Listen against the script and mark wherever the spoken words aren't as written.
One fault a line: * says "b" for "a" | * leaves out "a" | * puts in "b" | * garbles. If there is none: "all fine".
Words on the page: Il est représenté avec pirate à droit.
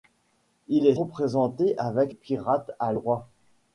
all fine